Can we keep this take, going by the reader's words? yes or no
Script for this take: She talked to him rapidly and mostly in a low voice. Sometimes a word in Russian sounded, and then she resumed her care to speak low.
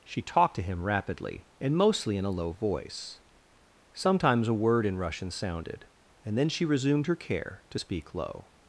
yes